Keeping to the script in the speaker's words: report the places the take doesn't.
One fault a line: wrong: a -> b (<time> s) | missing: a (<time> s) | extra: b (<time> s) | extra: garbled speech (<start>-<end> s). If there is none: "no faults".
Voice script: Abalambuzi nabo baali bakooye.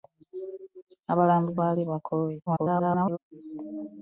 missing: nabo (1.6 s)
extra: garbled speech (2.5-3.2 s)